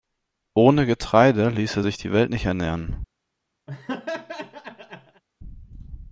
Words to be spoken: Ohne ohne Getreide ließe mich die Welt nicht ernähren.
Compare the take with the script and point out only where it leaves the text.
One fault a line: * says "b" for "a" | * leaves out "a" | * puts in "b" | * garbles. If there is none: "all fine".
* leaves out "ohne"
* says "sich" for "mich"